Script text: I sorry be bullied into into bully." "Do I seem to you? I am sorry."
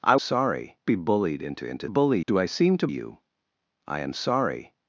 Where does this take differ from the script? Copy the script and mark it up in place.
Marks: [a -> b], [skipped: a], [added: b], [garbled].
I sorry be bullied into into bully." "Do I seem to you? I am sorry."